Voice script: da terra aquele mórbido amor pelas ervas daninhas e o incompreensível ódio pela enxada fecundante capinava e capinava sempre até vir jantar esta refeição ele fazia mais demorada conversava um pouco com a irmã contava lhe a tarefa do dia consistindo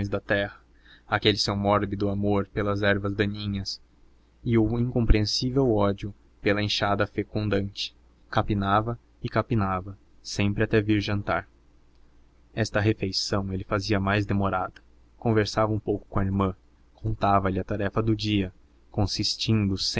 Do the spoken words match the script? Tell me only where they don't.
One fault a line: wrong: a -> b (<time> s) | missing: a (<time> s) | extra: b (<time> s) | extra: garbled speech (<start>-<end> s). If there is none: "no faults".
extra: seu (1.4 s)